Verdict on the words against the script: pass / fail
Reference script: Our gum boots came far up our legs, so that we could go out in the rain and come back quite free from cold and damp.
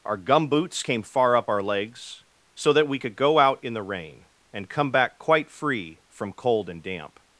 pass